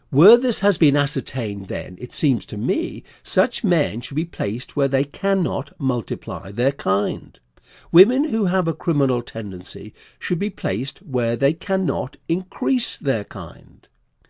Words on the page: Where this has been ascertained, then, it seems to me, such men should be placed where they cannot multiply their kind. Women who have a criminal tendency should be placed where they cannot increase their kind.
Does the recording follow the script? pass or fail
pass